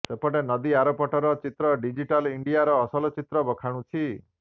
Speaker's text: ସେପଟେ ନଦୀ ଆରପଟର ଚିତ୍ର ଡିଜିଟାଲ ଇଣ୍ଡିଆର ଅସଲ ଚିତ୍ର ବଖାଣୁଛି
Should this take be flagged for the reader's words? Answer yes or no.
no